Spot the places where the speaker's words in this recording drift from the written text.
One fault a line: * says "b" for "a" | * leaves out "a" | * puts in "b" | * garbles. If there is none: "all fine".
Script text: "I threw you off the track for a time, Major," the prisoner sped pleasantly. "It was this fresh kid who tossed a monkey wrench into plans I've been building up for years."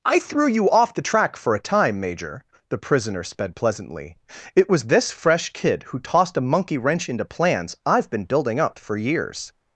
all fine